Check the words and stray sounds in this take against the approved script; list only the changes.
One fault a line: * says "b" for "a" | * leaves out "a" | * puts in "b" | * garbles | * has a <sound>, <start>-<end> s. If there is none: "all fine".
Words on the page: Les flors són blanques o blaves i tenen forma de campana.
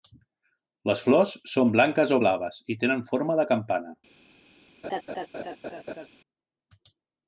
* has a laugh, 4.8-6.1 s